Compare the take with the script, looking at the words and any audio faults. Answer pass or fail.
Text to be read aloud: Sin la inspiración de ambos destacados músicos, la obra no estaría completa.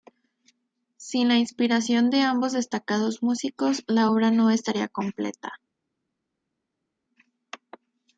pass